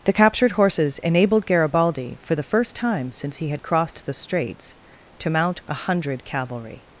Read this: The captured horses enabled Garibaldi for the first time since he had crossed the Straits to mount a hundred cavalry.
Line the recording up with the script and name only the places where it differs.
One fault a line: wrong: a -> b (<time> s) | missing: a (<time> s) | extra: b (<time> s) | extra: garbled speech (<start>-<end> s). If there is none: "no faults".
no faults